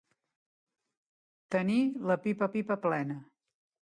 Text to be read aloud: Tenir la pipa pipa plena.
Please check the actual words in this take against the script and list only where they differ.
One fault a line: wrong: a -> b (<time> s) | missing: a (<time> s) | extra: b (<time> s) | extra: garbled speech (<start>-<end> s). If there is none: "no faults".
no faults